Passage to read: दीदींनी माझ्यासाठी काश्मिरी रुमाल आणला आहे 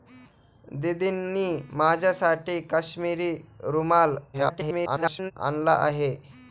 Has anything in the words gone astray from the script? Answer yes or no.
yes